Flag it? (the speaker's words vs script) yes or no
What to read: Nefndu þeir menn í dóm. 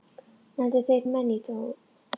no